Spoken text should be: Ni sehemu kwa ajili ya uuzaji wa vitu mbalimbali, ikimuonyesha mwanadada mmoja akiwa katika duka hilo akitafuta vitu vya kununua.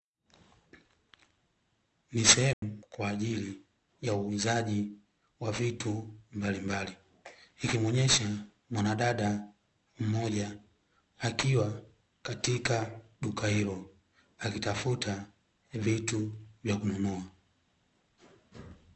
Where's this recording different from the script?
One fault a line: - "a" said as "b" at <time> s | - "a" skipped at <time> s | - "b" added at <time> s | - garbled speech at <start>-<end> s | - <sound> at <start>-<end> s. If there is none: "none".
- dropout at 2.5-2.6 s